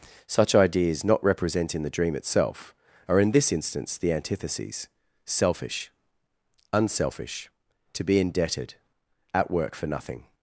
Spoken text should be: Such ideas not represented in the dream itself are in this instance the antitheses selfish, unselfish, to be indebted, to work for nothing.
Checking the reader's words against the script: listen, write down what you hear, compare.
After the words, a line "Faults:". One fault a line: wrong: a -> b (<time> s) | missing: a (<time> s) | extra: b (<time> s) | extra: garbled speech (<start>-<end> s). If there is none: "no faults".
Such ideas not represent in the dream itself are in this instance the antitheses selfish, unselfish, to be indebted, at work for nothing.
Faults:
wrong: represented -> represent (1.2 s)
wrong: to -> at (9.3 s)